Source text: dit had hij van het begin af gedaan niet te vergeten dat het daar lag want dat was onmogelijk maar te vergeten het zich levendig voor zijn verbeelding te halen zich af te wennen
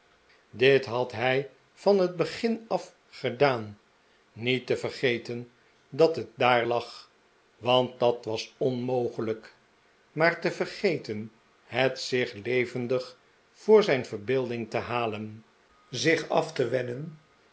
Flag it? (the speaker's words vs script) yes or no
no